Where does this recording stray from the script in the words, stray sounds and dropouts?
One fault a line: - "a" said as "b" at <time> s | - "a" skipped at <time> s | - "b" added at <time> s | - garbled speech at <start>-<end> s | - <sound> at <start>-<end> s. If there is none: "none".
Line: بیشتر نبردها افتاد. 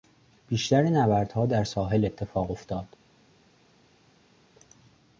- "در ساحل اتفاق" added at 1.4 s